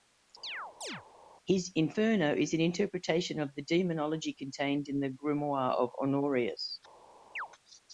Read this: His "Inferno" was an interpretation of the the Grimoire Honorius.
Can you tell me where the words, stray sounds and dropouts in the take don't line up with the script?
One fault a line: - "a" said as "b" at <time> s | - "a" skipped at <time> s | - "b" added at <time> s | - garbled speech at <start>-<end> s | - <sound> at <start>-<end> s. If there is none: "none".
- chirp at 0.4-1.0 s
- "was" said as "is" at 2.4 s
- "demonology contained in" added at 3.6 s
- "of" added at 5.7 s
- chirp at 7.4-7.5 s